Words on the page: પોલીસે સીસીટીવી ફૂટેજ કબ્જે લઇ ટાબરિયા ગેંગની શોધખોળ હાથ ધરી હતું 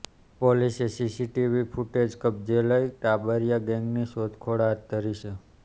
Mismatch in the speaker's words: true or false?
true